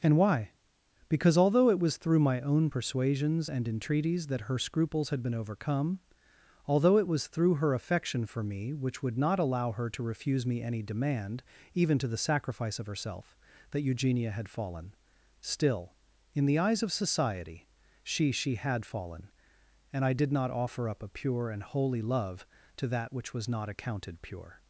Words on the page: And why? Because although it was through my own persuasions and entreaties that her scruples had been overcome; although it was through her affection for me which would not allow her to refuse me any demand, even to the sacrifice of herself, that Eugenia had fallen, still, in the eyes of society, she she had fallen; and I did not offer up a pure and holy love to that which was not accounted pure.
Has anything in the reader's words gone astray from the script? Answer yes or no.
no